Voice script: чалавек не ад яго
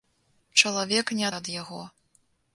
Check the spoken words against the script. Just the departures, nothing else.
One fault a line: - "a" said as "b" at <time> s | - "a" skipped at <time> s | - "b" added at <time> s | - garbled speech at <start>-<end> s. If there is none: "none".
none